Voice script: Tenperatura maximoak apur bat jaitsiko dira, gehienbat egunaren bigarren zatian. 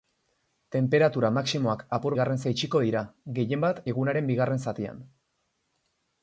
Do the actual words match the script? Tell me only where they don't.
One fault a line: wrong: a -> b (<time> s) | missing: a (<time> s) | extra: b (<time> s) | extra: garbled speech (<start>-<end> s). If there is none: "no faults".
wrong: bat -> bigarren (2.1 s)